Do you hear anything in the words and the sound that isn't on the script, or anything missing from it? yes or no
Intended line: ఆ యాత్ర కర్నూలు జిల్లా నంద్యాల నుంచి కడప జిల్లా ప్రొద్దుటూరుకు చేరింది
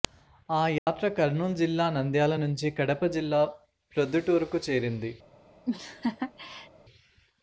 yes